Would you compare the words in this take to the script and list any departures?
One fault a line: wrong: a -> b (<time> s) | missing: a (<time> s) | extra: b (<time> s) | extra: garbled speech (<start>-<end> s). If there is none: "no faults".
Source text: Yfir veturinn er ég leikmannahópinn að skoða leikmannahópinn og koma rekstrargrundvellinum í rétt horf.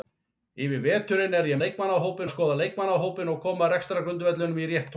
no faults